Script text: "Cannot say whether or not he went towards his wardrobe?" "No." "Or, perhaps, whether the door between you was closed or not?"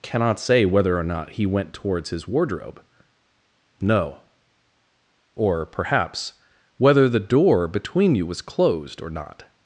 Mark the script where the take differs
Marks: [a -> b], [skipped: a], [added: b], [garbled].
"Cannot say whether or not he went towards his wardrobe?" "No." "Or, perhaps, whether the door between you was closed or not?"